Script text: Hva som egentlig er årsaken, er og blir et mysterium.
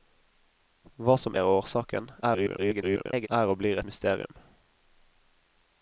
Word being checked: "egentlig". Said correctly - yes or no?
no